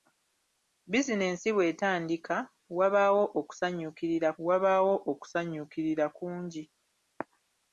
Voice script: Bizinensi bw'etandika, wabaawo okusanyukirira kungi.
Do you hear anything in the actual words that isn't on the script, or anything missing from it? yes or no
yes